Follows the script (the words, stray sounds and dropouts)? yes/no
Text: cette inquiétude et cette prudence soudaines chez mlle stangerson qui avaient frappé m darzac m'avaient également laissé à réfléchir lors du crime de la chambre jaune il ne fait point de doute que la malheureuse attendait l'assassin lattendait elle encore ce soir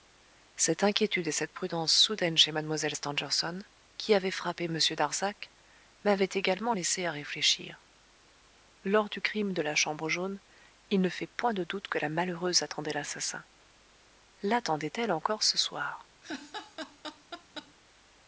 no